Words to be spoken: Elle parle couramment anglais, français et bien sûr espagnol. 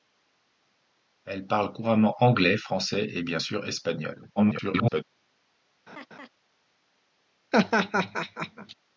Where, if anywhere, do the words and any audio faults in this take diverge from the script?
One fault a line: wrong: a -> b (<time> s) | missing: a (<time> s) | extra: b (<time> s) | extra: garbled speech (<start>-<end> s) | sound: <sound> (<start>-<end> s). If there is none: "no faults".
extra: garbled speech (4.4-5.0 s)
sound: laugh (5.9-6.3 s)
sound: laugh (7.5-8.7 s)